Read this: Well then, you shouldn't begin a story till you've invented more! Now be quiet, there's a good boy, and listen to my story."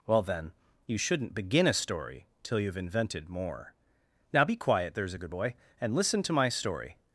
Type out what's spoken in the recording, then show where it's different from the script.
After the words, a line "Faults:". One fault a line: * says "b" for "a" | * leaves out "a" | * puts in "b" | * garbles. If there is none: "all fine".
Well then, you shouldn't begin a story till you've invented more! Now be quiet, there's a good boy, and listen to my story."
Faults:
all fine